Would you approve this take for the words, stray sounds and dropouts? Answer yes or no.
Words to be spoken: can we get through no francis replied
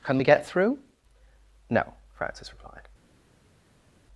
yes